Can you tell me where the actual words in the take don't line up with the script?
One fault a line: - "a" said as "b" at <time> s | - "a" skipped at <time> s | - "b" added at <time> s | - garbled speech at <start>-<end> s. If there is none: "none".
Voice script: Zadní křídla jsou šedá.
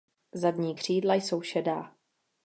none